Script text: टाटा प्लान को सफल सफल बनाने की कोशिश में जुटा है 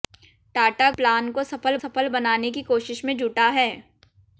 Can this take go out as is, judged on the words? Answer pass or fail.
pass